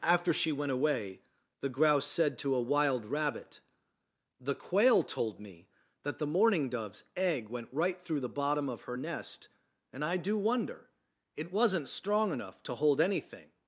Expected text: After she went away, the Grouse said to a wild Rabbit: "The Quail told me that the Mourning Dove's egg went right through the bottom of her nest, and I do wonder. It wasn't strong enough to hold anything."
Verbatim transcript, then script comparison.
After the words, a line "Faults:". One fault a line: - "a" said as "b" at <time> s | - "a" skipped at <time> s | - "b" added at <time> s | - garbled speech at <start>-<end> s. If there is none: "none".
After she went away, the Grouse said to a wild Rabbit: "The Quail told me that the Mourning Dove's egg went right through the bottom of her nest, and I do wonder. It wasn't strong enough to hold anything."
Faults:
none